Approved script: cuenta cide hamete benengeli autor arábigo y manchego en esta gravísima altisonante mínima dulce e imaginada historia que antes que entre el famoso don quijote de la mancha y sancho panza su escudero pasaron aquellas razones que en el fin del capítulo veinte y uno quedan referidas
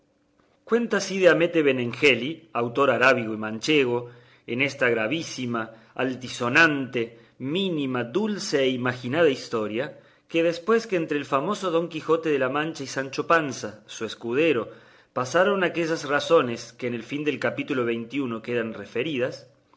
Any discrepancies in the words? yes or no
yes